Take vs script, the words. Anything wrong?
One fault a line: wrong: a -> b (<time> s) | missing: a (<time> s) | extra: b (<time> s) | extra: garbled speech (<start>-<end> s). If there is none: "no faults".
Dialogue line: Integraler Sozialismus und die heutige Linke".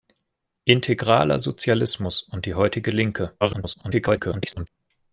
extra: garbled speech (3.4-4.7 s)